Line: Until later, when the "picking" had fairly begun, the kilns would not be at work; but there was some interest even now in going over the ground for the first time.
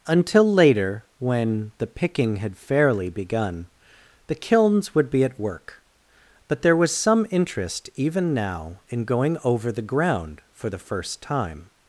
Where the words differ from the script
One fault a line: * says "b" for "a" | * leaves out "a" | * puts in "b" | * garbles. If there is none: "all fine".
* leaves out "not"